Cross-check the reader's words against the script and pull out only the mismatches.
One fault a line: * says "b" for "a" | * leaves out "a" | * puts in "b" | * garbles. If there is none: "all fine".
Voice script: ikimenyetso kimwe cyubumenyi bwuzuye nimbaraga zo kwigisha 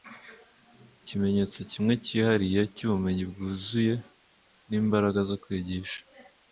* puts in "cyihariye"